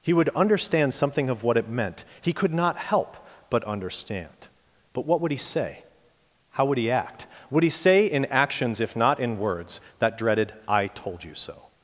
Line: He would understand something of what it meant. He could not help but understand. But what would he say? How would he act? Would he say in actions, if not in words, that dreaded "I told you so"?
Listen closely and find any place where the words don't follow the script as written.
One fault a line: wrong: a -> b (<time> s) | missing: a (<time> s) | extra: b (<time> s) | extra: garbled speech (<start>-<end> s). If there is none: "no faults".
no faults